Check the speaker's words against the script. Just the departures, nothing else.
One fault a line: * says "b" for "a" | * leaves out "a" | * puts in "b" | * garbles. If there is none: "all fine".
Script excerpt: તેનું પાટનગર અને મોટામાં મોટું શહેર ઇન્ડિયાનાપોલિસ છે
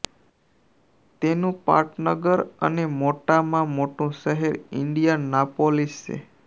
all fine